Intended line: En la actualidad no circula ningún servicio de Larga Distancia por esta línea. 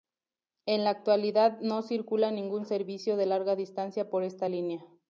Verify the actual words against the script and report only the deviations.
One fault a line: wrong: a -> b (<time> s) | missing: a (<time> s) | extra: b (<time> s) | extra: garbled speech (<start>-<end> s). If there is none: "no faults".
no faults